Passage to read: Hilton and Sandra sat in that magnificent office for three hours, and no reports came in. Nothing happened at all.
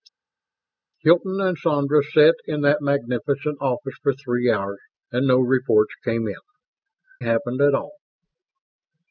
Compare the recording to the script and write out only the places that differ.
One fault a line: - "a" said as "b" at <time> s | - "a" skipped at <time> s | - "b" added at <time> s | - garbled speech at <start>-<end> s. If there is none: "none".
- "Nothing" skipped at 6.4 s